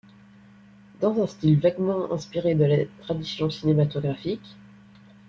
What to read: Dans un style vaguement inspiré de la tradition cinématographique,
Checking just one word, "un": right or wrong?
right